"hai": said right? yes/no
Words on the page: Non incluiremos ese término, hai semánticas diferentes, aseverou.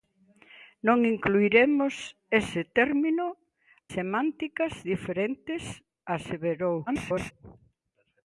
no